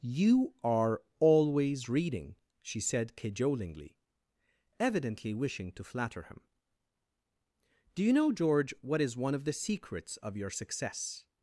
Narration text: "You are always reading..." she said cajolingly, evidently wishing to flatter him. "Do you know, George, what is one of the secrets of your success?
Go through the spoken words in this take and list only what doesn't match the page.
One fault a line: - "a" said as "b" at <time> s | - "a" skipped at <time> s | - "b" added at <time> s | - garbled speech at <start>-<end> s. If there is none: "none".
none